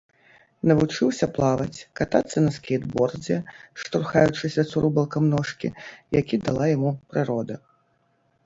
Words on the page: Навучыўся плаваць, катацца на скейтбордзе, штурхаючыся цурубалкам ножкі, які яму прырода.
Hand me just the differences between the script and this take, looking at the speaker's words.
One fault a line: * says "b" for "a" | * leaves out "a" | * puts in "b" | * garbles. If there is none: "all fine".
* puts in "дала"